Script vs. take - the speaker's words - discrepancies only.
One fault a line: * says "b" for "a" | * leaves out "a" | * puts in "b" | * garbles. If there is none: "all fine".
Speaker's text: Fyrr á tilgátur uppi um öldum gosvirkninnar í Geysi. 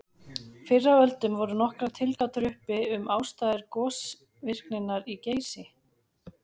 * puts in "öldum voru nokkrar"
* says "ástæður" for "öldum"